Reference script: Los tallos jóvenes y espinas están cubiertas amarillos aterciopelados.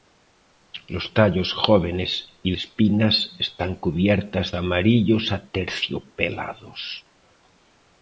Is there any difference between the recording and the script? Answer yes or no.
no